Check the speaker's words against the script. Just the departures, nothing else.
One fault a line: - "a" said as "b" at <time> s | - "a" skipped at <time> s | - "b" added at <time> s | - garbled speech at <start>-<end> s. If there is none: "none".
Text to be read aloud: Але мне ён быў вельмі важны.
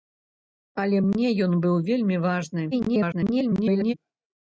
- garbled speech at 2.7-3.9 s